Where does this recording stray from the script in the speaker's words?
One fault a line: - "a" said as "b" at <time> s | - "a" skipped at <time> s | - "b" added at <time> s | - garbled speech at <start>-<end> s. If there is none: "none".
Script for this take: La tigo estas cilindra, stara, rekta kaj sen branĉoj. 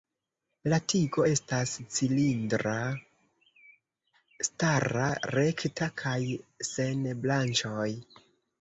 none